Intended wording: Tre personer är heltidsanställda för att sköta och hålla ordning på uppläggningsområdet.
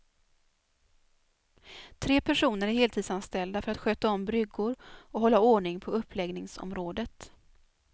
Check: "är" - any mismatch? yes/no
no